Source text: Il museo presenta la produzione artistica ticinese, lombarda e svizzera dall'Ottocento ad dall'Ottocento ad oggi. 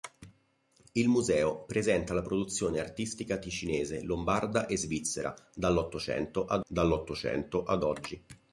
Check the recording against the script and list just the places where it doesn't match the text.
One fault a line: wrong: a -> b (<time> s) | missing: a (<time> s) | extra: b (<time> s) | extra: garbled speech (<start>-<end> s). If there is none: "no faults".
no faults